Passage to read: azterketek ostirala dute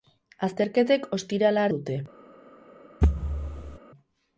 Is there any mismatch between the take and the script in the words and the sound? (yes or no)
yes